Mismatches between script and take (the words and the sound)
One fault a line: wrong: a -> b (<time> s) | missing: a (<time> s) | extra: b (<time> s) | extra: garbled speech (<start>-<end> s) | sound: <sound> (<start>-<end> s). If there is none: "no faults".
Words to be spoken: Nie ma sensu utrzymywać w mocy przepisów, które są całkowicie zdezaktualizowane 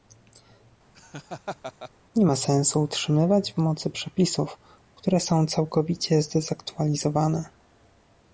sound: laugh (0.9-1.9 s)